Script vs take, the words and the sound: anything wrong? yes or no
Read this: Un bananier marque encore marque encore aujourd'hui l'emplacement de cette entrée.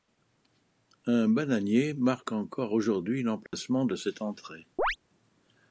yes